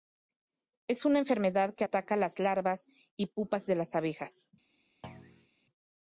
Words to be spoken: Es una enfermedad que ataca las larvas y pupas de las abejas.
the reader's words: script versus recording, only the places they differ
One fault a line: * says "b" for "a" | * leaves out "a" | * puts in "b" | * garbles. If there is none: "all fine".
all fine